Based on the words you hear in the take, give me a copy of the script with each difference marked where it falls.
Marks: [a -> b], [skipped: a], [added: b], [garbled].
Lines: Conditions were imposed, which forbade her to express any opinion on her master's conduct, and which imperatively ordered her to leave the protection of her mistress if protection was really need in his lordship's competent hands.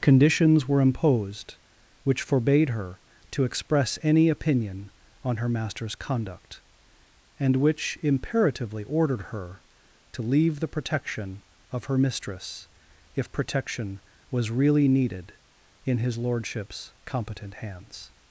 Conditions were imposed, which forbade her to express any opinion on her master's conduct, and which imperatively ordered her to leave the protection of her mistress if protection was really [need -> needed] in his lordship's competent hands.